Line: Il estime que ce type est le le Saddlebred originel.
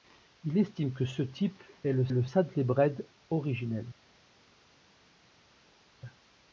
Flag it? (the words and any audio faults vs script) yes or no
no